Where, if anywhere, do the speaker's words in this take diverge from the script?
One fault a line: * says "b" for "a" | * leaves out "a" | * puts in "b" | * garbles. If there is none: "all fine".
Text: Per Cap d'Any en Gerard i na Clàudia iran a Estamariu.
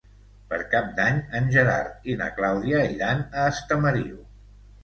all fine